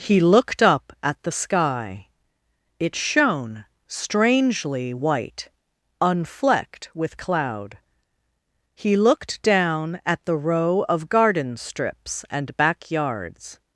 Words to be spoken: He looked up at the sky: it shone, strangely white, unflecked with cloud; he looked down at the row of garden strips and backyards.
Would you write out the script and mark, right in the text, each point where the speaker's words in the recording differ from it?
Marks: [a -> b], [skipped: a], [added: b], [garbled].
He looked up at the sky: it shone, strangely white, unflecked with cloud; he looked down at the row of garden strips and backyards.